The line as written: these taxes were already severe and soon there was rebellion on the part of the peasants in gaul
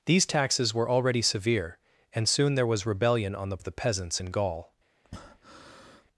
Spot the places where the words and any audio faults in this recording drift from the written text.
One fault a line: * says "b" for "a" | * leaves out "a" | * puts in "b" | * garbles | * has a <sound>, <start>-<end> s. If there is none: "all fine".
* leaves out "part"
* has a breath, 5.0-6.1 s